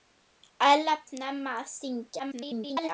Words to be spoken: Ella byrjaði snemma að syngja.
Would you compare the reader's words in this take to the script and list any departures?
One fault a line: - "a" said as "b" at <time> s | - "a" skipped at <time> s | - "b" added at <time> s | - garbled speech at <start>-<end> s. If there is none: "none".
- "byrjaði" skipped at 0.9 s
- garbled speech at 2.2-2.9 s